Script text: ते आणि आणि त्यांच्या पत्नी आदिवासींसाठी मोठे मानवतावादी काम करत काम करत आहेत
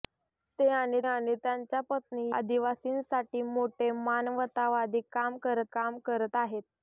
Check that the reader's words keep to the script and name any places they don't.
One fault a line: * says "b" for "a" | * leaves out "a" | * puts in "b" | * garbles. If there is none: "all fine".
all fine